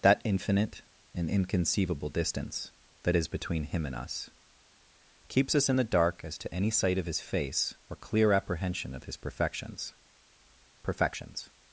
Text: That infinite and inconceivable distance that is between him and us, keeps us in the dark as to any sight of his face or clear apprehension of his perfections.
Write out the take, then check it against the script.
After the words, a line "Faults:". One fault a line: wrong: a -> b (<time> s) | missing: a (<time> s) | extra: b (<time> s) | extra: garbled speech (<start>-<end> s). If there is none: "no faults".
That infinite and inconceivable distance that is between him and us, keeps us in the dark as to any sight of his face or clear apprehension of his perfections perfections.
Faults:
extra: perfections (10.8 s)